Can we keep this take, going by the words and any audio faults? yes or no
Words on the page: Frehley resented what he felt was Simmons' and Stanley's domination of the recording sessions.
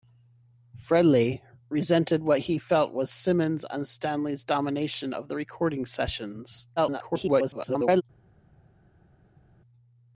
no